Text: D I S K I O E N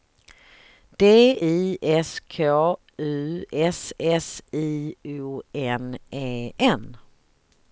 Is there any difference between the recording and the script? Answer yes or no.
yes